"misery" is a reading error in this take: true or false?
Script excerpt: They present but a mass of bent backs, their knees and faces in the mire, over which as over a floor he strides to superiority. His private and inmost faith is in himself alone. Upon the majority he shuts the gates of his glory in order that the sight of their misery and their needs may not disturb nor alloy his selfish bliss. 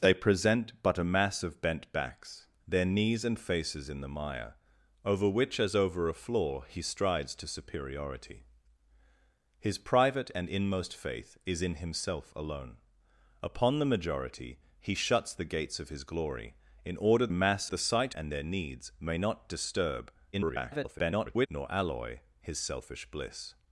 true